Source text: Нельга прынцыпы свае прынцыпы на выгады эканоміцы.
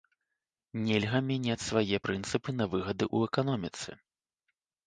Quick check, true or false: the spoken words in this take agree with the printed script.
false